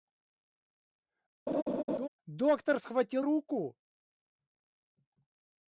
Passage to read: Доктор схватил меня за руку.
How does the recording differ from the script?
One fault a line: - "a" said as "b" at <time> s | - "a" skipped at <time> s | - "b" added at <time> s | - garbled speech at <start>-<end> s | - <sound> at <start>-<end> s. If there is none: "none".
- laugh at 1.5-2.1 s
- "меня за" skipped at 3.2 s